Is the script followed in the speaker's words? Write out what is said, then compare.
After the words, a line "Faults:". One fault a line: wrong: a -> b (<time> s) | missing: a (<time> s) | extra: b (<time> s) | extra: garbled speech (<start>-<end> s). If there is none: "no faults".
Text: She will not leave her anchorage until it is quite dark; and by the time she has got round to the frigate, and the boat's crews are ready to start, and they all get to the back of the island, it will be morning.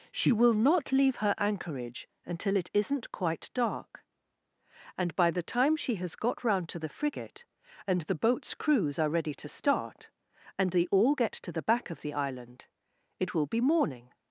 She will not leave her anchorage until it isn't quite dark; and by the time she has got round to the frigate, and the boat's crews are ready to start, and they all get to the back of the island, it will be morning.
Faults:
wrong: is -> isn't (2.7 s)